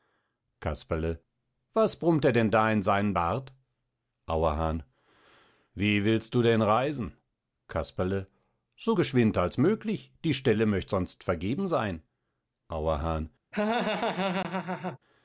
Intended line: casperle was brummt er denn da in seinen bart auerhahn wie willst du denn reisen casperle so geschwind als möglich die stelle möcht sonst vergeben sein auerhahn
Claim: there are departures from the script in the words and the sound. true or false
true